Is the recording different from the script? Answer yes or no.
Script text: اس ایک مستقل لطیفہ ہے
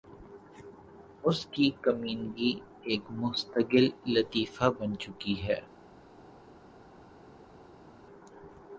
yes